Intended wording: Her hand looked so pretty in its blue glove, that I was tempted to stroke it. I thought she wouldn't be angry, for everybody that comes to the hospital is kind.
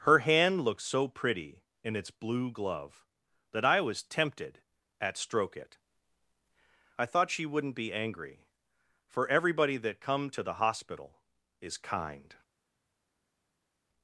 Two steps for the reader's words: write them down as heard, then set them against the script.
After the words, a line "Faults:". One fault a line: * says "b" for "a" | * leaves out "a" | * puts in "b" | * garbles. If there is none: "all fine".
Her hand looked so pretty in its blue glove, that I was tempted at stroke it. I thought she wouldn't be angry, for everybody that come to the hospital is kind.
Faults:
* says "at" for "to"
* says "come" for "comes"